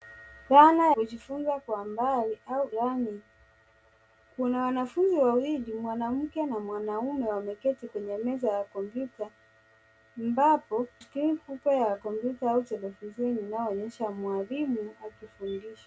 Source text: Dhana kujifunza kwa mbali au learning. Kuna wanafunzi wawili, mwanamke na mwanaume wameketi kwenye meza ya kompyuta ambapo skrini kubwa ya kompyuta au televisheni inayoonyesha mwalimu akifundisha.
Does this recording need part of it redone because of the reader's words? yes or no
no